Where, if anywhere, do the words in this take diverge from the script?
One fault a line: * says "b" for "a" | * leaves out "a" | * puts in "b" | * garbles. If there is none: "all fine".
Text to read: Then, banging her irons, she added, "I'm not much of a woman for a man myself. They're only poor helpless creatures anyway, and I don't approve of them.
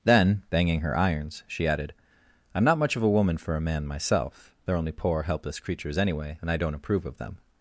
all fine